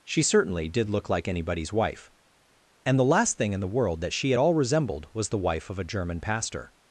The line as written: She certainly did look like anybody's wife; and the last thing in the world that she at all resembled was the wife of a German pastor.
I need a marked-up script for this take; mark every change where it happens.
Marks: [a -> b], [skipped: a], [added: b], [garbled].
She certainly did look like anybody's wife; and the last thing in the world that she at all resembled was the wife of a German pastor.